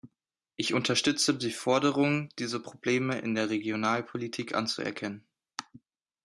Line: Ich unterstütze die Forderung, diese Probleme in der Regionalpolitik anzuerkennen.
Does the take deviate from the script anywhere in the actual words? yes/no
no